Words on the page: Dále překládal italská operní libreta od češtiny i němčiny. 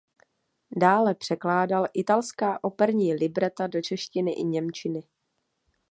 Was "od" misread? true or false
true